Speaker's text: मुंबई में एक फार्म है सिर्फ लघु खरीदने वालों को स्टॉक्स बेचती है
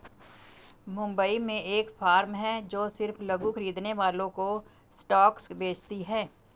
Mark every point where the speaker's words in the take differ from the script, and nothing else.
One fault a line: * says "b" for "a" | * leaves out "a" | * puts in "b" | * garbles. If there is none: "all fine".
* puts in "जो"